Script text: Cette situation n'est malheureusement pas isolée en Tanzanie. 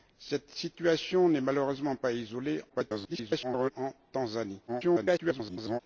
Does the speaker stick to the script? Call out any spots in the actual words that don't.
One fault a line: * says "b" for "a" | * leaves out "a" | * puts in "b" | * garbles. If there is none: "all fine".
* garbles
* garbles